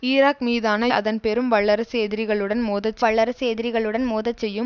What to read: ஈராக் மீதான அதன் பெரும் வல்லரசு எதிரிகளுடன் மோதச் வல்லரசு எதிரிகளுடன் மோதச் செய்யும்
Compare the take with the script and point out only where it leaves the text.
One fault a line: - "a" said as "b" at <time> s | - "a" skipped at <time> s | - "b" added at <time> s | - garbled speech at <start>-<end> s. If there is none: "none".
none